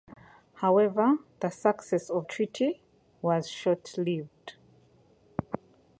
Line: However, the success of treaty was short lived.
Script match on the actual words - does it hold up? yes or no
yes